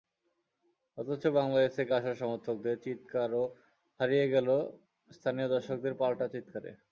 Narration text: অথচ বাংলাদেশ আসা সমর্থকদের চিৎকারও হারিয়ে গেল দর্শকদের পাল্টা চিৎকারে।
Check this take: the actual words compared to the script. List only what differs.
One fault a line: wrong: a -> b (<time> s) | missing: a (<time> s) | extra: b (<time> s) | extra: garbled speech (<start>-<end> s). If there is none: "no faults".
extra: থেকে (1.8 s)
extra: স্থানীয় (5.1 s)